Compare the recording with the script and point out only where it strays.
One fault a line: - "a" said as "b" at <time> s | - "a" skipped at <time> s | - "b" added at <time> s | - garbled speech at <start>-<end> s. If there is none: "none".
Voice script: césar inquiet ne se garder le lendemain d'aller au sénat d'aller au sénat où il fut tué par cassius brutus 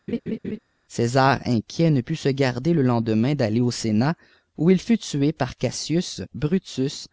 - "put" added at 2.0 s
- "d'aller au sénat" skipped at 4.1 s